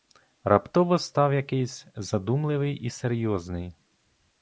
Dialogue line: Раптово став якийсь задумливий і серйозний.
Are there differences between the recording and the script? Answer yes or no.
no